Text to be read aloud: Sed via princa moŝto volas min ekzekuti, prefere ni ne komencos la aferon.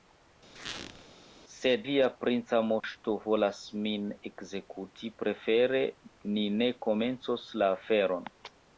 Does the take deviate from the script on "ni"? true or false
false